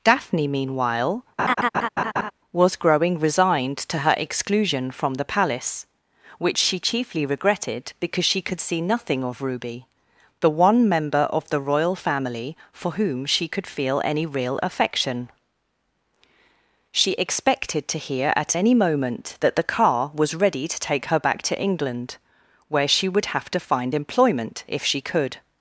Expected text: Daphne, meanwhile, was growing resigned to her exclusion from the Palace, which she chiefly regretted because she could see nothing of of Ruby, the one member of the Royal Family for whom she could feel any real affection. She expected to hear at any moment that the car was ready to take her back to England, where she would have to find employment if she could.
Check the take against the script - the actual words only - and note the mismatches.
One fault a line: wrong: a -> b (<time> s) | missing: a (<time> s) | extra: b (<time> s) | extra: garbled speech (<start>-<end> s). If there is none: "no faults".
missing: of (9.4 s)